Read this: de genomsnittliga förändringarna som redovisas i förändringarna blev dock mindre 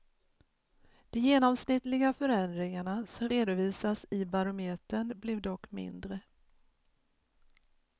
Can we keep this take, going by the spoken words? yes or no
no